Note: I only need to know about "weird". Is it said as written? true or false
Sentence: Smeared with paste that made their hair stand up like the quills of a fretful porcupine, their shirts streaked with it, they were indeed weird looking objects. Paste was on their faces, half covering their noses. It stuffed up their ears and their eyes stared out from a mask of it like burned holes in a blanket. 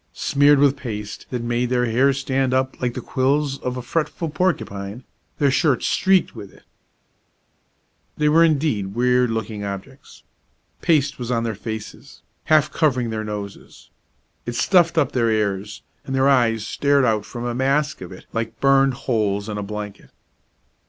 true